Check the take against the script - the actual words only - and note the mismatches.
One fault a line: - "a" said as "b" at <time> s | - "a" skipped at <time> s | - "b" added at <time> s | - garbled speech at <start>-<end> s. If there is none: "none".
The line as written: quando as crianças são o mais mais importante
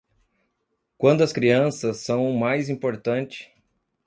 - "mais" skipped at 2.7 s